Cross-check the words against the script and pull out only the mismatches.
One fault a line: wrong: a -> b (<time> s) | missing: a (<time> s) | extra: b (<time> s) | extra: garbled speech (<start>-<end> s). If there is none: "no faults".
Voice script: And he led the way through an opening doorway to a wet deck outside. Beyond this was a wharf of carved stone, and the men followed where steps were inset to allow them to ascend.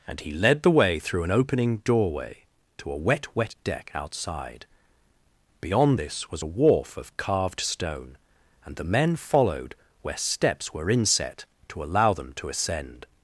extra: wet (3.4 s)